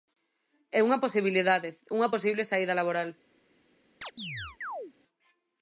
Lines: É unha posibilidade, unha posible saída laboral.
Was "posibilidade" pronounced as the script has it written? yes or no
yes